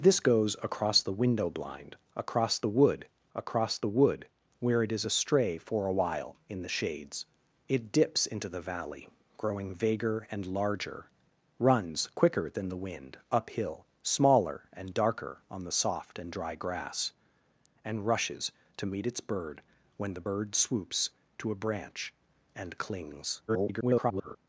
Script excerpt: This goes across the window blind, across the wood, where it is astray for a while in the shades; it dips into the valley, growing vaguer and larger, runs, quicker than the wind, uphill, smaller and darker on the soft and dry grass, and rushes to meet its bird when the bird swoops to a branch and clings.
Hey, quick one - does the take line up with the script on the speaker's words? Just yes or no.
no